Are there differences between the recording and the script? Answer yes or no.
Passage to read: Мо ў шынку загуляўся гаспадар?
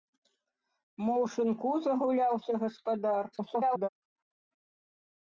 yes